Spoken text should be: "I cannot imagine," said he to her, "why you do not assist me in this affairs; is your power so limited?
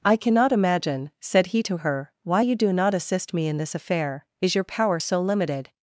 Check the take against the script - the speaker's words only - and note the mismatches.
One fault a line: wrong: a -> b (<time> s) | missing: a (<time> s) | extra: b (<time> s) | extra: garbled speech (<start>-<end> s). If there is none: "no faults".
wrong: affairs -> affair (3.7 s)